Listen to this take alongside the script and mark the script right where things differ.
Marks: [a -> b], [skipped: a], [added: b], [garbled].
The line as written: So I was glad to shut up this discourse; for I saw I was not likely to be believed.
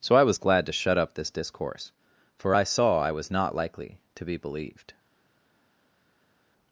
So I was glad to shut up this discourse; for I saw I was not likely to be believed.